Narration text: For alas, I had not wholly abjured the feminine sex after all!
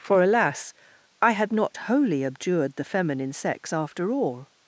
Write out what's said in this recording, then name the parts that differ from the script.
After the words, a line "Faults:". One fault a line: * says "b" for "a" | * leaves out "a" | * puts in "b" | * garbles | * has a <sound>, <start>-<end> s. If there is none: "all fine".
For alas, I had not wholly abjured the feminine sex after all!
Faults:
all fine